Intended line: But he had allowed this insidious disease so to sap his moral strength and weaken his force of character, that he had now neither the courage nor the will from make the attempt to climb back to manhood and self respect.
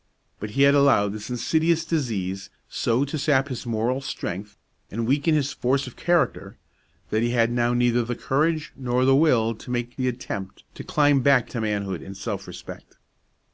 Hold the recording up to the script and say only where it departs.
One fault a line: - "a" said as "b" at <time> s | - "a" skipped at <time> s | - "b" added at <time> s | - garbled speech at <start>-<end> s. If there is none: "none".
- "from" said as "to" at 9.6 s